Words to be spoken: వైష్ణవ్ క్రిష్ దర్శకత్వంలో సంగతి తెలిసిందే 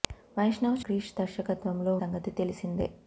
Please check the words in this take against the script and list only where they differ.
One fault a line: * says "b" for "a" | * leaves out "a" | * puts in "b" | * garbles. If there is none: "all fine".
all fine